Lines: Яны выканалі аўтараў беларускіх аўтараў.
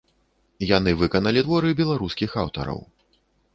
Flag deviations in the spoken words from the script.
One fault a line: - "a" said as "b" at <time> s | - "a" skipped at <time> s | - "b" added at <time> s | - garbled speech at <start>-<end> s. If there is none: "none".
- "аўтараў" said as "творы" at 1.5 s